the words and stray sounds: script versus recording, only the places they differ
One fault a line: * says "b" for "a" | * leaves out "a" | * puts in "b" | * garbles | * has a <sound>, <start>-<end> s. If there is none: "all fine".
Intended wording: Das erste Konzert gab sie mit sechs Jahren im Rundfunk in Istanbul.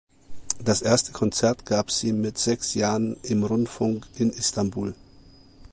all fine